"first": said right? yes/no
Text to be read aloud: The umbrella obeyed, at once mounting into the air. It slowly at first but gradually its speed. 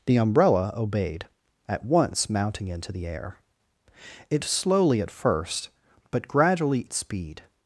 yes